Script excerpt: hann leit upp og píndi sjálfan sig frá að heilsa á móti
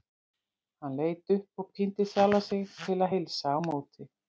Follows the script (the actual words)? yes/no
no